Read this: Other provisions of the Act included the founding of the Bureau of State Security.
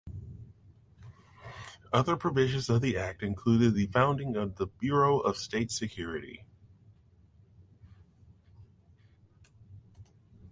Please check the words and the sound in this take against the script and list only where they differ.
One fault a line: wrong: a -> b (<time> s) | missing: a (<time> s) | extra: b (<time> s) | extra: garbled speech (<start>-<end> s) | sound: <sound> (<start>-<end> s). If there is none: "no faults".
no faults